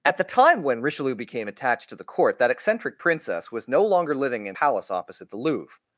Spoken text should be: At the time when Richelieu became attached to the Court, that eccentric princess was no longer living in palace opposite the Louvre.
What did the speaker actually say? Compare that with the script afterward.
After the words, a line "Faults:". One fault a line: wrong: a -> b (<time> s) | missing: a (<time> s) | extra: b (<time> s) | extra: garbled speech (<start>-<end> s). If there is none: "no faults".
At the time when Richelieu became attached to the Court, that eccentric princess was no longer living in palace opposite the Louvre.
Faults:
no faults